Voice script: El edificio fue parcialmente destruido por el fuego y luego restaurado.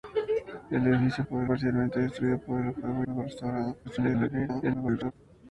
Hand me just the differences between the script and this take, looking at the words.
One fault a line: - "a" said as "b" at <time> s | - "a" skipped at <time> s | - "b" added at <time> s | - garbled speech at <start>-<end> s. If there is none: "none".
- "fue" said as "por" at 1.2 s
- "y" skipped at 3.0 s
- garbled speech at 3.8-5.1 s